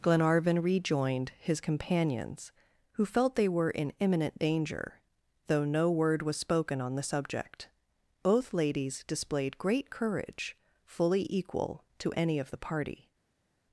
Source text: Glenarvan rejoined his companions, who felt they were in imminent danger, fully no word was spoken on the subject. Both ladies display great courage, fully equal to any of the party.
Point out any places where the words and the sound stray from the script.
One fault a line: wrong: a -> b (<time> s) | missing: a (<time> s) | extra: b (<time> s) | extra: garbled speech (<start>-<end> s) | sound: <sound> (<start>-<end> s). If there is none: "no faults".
wrong: fully -> though (5.5 s)
wrong: display -> displayed (9.1 s)